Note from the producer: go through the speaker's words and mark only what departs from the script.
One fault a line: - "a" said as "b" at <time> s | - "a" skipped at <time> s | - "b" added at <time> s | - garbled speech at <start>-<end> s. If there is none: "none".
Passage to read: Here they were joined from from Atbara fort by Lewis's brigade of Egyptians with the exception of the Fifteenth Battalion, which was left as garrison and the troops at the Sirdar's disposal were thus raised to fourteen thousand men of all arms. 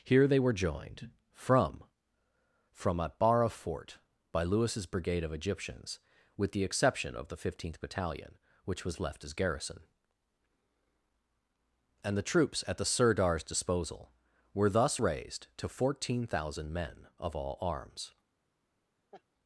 none